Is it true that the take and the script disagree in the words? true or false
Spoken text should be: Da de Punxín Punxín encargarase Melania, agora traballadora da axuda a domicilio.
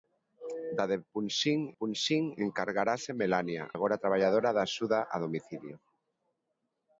false